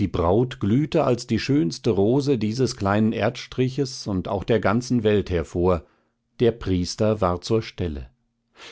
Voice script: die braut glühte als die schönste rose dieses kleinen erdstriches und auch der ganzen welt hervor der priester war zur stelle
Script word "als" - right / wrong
right